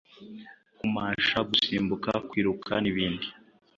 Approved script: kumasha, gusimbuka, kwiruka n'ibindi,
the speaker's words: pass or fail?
pass